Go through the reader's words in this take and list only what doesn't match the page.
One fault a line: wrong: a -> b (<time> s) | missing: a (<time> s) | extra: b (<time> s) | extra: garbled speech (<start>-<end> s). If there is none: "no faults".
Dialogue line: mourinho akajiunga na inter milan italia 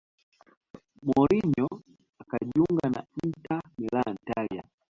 no faults